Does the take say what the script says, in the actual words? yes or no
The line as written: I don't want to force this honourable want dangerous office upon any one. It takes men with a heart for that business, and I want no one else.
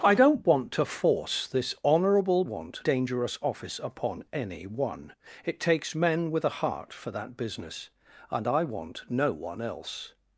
yes